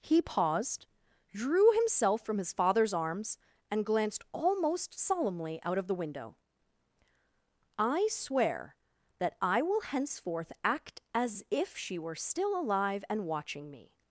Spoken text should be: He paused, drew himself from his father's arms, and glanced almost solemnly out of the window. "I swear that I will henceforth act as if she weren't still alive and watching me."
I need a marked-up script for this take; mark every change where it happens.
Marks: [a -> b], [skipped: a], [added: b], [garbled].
He paused, drew himself from his father's arms, and glanced almost solemnly out of the window. "I swear that I will henceforth act as if she [weren't -> were] still alive and watching me."